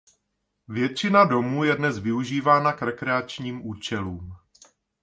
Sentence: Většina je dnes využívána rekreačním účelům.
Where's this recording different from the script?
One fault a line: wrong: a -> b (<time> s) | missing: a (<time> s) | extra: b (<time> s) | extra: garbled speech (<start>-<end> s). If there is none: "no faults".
extra: domů (1.2 s)
extra: k (2.7 s)